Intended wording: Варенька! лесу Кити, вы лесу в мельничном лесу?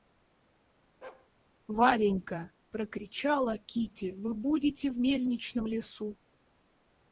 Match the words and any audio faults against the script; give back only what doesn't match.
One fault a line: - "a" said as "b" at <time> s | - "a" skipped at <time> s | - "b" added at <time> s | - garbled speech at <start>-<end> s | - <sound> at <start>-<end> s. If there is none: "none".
- bark at 1.0-1.3 s
- "лесу" said as "прокричала" at 2.7 s
- "лесу" said as "будете" at 4.3 s